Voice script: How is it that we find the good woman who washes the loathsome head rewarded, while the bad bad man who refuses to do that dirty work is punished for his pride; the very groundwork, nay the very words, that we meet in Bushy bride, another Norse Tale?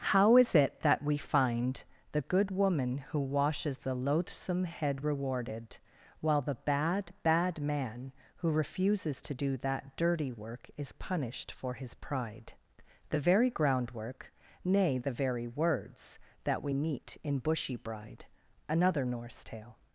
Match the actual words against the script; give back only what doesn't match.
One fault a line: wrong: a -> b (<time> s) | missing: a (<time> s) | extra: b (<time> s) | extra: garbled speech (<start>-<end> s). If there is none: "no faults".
no faults